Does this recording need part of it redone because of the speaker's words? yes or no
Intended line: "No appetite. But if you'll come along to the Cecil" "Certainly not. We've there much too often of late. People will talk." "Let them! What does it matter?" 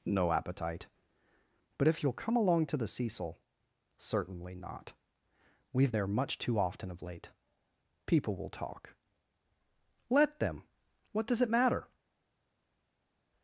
no